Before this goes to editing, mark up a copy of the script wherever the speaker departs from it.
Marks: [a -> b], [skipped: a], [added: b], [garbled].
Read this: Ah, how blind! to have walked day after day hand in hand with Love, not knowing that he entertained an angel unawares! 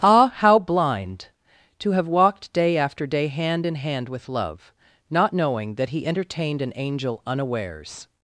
Ah, how blind! to have walked day after day hand in hand with Love, not knowing that he entertained an angel unawares!